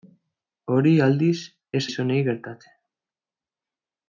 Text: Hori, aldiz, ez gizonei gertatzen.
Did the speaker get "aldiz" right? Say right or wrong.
right